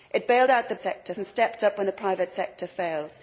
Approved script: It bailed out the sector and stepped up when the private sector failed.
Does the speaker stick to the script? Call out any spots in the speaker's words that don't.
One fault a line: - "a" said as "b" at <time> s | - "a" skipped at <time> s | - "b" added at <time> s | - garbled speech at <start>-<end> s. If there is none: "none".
none